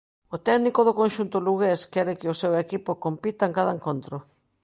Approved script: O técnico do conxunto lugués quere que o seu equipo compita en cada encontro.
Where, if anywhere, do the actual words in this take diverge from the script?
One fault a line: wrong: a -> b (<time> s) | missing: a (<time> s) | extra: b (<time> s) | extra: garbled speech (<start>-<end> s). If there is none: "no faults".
no faults